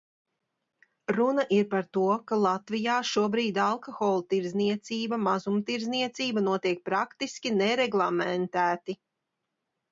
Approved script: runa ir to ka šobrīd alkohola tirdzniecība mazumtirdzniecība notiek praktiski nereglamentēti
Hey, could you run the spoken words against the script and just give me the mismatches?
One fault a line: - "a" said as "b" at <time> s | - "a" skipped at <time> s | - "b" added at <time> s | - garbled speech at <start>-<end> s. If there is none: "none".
- "par" added at 1.7 s
- "latvijā" added at 2.5 s